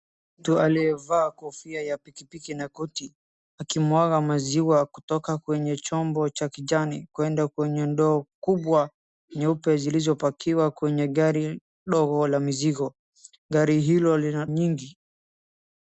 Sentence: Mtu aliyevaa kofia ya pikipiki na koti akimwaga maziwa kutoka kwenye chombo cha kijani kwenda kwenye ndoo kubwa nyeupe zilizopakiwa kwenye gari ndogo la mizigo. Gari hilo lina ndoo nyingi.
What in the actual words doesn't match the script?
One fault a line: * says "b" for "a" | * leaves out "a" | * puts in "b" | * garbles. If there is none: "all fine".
* leaves out "ndoo"